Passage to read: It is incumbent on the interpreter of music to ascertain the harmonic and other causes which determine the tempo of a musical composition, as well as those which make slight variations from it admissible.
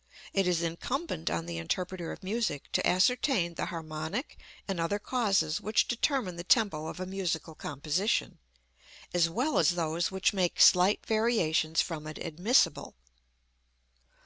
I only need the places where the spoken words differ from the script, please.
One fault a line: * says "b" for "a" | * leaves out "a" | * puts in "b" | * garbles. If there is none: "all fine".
all fine